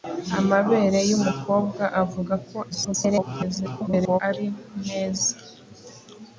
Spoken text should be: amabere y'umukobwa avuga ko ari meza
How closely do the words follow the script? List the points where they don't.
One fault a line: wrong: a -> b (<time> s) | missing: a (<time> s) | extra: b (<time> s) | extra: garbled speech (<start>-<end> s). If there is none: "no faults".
extra: garbled speech (2.7-4.2 s)